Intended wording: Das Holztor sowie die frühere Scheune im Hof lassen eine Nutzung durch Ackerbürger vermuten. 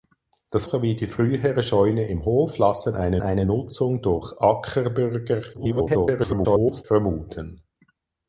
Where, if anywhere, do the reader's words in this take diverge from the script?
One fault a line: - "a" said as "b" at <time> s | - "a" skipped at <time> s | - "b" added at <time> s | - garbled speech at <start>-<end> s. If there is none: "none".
- "Holztor" skipped at 0.7 s
- "eine" added at 3.2 s
- garbled speech at 5.5-6.8 s